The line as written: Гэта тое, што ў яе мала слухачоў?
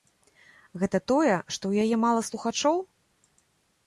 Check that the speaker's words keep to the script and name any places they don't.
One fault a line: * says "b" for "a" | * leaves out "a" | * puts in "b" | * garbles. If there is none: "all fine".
all fine